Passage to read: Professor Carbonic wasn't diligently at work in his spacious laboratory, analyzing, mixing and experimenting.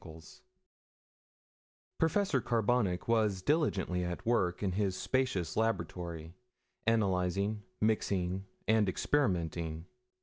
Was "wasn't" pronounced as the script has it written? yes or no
no